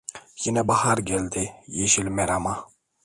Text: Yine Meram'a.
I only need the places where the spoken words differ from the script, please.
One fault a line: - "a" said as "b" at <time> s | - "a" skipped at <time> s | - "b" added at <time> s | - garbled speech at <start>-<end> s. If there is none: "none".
- "bahar geldi yeşil" added at 0.7 s